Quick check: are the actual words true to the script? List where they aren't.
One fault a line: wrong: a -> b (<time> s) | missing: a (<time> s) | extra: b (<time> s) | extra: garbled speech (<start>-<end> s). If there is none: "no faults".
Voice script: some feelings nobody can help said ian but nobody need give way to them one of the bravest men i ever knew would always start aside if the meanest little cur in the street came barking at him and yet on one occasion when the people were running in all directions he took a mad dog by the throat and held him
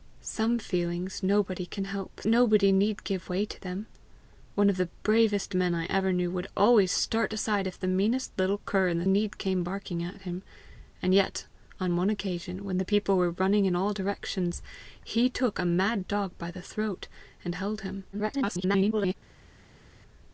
missing: said ian but (2.2 s)
wrong: street -> need (9.1 s)
extra: garbled speech (18.1-19.1 s)